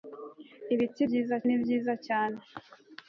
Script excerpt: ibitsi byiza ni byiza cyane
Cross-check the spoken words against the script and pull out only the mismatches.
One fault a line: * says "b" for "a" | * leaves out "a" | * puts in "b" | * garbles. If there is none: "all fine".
all fine